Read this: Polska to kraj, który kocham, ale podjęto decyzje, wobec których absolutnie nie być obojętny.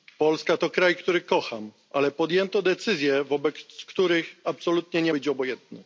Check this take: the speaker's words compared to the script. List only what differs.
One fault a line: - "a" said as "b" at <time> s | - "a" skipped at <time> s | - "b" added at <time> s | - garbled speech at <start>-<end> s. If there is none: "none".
none